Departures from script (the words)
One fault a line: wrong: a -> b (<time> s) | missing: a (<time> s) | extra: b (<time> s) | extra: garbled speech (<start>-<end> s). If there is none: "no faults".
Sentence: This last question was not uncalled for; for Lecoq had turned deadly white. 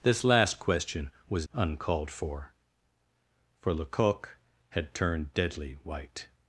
missing: not (1.5 s)